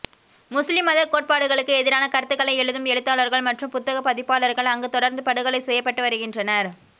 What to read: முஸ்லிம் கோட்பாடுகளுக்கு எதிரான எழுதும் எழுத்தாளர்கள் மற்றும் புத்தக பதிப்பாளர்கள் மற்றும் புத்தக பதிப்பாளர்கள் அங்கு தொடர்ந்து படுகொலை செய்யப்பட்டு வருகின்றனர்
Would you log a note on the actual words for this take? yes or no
yes